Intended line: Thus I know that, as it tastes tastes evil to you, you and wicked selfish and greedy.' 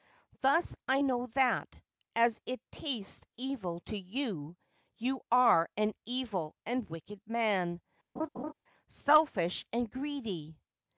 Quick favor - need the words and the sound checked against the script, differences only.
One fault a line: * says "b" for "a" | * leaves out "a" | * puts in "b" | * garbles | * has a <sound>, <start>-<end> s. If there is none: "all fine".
* leaves out "tastes"
* puts in "are an evil"
* puts in "man"
* has a laugh, 8.2-8.5 s